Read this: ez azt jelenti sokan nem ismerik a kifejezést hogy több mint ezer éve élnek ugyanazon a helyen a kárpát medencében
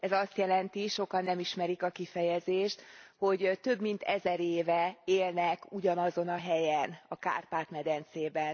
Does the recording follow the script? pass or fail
pass